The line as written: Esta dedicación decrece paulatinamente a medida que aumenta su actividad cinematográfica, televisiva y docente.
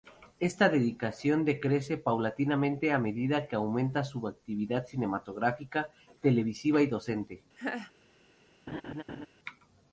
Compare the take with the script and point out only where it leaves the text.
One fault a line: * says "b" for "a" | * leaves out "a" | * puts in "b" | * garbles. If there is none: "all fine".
all fine